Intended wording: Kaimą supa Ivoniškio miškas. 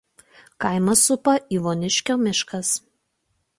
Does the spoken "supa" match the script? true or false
true